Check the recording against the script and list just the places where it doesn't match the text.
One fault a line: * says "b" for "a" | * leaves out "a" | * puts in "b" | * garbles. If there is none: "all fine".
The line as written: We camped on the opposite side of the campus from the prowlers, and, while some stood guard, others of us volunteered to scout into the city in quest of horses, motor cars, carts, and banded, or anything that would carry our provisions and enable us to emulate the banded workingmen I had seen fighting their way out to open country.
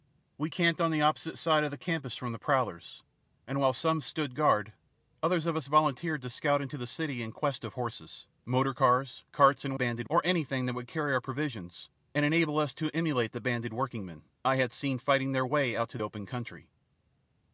all fine